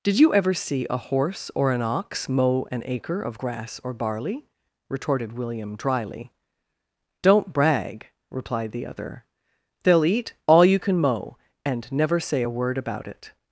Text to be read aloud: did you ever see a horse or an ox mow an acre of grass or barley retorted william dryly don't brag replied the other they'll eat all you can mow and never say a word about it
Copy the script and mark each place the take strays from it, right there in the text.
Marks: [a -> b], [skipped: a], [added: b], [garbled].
did you ever see a horse or an ox mow an acre of grass or barley retorted william dryly don't brag replied the other they'll eat all you can mow and never say a word about it